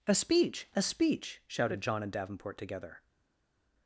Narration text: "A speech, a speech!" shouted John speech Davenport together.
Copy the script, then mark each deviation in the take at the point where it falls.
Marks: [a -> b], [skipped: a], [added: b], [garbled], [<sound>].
"A speech, a speech!" shouted John [speech -> and] Davenport together.